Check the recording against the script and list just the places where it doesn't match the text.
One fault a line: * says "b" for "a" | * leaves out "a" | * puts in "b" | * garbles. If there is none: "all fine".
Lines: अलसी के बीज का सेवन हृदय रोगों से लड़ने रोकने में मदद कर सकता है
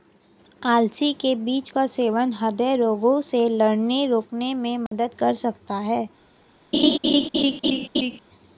all fine